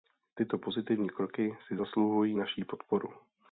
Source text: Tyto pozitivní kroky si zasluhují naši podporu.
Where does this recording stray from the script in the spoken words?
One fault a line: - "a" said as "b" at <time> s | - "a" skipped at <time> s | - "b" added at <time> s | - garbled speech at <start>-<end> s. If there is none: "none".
none